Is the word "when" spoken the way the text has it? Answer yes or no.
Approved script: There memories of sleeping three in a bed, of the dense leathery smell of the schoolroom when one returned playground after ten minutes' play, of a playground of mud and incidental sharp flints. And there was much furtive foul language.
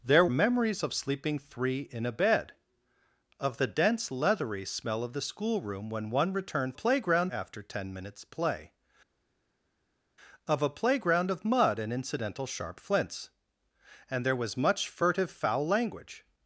yes